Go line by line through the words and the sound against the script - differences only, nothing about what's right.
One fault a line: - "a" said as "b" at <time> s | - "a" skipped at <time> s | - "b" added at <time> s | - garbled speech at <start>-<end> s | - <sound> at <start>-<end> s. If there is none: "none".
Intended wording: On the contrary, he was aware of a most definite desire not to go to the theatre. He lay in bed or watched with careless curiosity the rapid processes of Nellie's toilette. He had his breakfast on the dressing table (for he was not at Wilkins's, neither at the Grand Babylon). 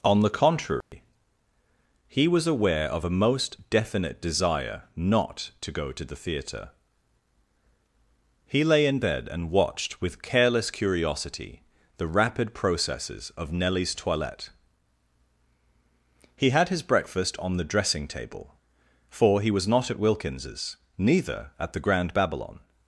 - dropout at 0.8-0.9 s
- "or" said as "and" at 9.3 s